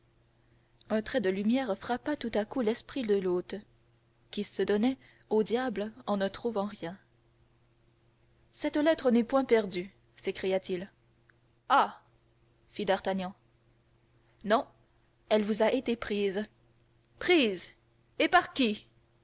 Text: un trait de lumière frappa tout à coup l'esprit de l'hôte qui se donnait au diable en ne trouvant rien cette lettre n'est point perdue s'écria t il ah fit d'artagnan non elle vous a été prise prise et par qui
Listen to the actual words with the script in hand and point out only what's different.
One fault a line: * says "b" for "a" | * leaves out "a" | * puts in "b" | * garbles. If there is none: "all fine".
all fine